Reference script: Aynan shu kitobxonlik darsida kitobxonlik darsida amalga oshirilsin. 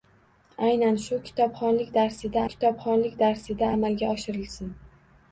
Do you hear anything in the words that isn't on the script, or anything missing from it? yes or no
no